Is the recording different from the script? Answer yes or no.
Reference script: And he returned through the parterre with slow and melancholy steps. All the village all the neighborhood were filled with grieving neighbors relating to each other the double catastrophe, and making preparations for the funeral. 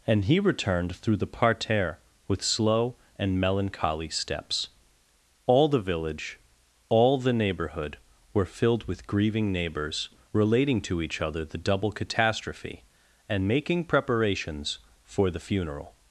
no